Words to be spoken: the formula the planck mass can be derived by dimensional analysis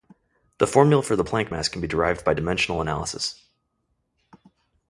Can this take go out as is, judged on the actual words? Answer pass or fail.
fail